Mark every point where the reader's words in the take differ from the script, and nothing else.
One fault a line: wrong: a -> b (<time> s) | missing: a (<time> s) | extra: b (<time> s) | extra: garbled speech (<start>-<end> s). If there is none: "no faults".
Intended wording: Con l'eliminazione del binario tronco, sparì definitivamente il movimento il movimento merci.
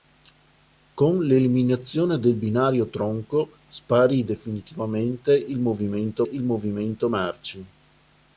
no faults